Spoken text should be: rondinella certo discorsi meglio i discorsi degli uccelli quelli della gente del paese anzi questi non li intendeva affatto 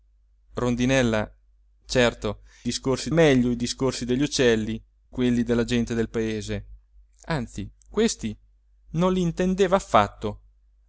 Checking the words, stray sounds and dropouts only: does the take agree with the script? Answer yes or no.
yes